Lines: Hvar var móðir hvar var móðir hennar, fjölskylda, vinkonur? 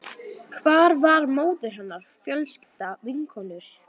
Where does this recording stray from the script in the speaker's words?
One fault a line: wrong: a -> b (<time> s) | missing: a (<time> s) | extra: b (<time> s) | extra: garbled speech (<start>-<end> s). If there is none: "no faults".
missing: hvar var móðir (1.8 s)